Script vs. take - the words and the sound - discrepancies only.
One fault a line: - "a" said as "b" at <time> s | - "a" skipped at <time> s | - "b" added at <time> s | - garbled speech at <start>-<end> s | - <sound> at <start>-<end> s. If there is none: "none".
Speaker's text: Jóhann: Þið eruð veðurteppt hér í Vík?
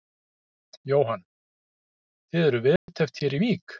- dropout at 2.8-2.9 s